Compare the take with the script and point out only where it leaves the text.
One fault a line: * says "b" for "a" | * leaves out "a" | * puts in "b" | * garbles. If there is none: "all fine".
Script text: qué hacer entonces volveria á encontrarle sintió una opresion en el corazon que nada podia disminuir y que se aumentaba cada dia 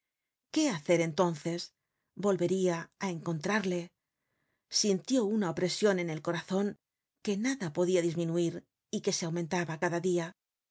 all fine